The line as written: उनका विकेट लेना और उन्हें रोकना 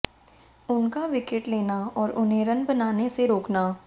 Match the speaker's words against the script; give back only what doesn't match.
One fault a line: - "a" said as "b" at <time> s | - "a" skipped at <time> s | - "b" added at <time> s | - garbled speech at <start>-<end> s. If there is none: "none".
- "रन बनाने से" added at 2.5 s